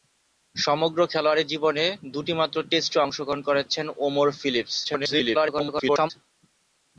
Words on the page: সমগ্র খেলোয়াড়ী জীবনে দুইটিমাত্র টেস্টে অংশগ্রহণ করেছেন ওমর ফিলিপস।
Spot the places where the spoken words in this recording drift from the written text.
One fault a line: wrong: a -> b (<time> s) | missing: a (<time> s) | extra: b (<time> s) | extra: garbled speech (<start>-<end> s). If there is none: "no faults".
extra: garbled speech (4.8-6.1 s)